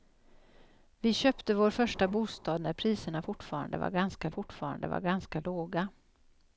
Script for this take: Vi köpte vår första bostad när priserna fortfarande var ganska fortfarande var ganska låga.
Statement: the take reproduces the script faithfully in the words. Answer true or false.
true